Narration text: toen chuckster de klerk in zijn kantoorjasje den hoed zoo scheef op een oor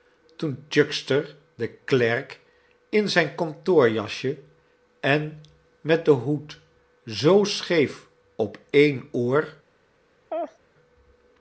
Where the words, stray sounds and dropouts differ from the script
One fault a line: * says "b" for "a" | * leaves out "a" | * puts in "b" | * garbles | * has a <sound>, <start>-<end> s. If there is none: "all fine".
* puts in "en met"
* has a laugh, 10.3-10.6 s